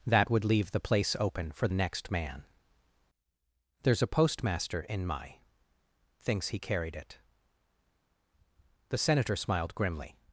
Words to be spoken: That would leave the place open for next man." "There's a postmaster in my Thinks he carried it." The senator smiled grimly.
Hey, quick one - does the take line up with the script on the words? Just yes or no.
yes